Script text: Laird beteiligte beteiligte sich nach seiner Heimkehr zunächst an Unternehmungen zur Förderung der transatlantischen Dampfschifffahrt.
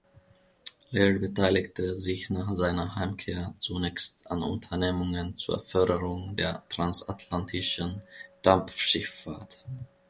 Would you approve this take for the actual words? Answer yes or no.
no